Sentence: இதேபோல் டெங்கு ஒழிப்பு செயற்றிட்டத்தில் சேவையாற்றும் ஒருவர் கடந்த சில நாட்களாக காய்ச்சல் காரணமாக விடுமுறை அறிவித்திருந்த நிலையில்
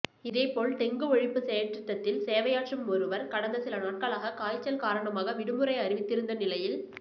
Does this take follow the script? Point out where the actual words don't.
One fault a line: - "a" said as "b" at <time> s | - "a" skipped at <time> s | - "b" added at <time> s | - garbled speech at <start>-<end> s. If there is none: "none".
none